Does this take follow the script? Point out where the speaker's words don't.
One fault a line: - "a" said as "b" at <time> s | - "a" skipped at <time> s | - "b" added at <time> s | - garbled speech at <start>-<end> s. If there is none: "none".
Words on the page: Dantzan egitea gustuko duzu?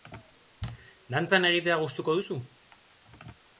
none